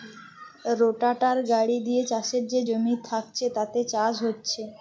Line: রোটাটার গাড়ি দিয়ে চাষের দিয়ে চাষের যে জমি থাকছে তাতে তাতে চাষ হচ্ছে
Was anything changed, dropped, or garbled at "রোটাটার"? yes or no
no